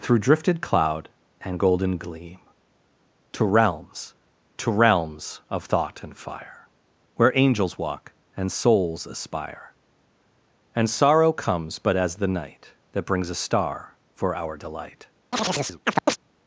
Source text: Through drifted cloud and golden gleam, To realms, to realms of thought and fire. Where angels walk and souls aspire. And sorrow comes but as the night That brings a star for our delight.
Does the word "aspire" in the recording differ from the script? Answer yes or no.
no